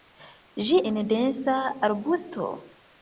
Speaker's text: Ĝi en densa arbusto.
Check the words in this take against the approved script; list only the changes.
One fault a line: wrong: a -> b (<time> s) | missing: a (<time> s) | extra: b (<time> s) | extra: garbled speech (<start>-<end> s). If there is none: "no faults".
no faults